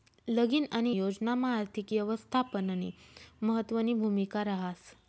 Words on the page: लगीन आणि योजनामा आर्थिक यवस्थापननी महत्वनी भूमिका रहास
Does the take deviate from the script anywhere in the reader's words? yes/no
no